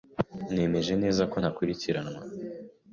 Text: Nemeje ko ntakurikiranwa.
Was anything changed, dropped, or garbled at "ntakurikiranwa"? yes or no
no